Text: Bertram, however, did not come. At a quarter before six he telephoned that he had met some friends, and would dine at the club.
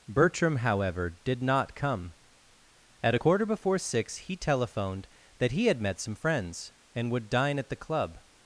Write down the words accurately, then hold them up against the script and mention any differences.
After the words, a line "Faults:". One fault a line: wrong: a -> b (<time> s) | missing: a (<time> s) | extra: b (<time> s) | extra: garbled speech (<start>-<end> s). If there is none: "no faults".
Bertram, however, did not come. At a quarter before six he telephoned that he had met some friends, and would dine at the club.
Faults:
no faults